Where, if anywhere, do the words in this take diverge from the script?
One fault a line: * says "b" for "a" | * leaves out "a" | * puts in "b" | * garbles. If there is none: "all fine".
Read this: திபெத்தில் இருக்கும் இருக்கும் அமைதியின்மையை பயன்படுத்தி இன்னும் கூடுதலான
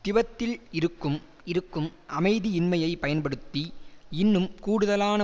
all fine